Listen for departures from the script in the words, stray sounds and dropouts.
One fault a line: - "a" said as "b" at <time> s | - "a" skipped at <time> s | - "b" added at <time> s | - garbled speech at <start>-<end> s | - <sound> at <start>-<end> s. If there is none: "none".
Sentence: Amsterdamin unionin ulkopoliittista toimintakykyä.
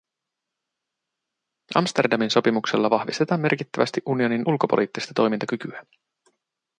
- "sopimuksella vahvistetaan merkittävästi" added at 2.3 s